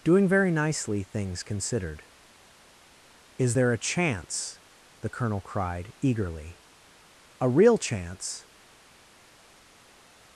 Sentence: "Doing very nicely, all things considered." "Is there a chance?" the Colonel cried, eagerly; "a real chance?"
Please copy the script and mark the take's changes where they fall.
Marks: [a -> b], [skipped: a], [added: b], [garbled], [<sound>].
"Doing very nicely, [skipped: all] things considered." "Is there a chance?" the Colonel cried, eagerly; "a real chance?"